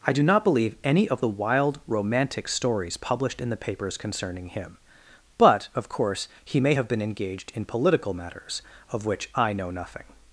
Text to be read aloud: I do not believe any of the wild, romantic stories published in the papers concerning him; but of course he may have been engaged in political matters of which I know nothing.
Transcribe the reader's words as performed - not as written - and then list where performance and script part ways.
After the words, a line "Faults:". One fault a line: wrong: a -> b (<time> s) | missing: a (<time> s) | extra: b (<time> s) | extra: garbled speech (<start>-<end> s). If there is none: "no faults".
I do not believe any of the wild, romantic stories published in the papers concerning him; but of course he may have been engaged in political matters of which I know nothing.
Faults:
no faults